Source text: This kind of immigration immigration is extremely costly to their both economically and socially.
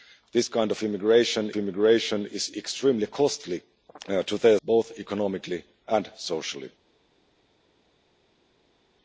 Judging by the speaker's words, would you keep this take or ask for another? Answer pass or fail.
pass